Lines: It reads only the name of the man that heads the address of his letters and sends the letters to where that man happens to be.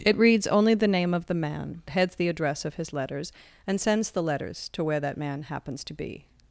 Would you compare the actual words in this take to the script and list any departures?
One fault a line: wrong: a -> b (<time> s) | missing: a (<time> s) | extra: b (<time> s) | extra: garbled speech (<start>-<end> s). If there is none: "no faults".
missing: that (1.8 s)